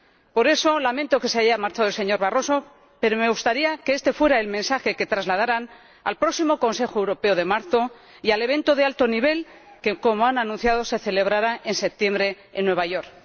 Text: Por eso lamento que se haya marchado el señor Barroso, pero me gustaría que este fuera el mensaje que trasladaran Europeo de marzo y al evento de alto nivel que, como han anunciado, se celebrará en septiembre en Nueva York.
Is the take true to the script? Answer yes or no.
no